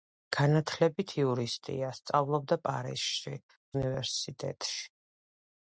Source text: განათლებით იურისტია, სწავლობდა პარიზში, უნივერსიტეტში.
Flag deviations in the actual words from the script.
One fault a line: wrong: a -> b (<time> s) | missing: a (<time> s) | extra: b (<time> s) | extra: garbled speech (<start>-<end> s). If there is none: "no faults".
no faults